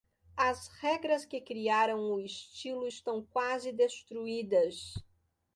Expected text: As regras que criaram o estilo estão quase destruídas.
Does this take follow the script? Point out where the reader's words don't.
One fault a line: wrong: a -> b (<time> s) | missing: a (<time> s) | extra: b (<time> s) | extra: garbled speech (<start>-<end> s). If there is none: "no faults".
no faults